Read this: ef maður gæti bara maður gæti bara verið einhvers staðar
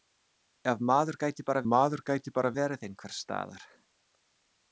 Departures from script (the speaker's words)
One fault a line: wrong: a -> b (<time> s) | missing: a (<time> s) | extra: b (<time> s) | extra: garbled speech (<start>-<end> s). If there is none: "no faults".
no faults